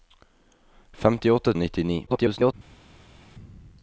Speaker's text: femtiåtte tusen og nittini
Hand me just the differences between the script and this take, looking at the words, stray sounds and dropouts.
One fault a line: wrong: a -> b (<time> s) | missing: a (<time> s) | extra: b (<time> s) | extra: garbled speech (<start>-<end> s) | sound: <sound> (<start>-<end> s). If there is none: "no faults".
missing: tusen (1.5 s)
extra: garbled speech (2.1-2.5 s)